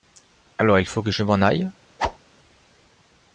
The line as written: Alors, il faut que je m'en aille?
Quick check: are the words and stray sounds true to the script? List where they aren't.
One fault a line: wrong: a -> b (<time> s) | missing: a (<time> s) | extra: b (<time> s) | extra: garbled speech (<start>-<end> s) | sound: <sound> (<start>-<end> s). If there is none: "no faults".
sound: whoosh (2.0-2.2 s)